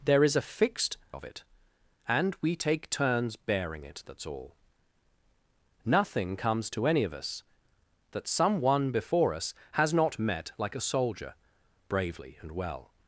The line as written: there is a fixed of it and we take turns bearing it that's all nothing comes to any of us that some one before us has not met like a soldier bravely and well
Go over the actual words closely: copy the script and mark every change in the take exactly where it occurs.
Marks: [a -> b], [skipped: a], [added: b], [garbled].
there is a fixed of it and we take turns bearing it that's all nothing comes to any of us that some one before us has not met like a soldier bravely and well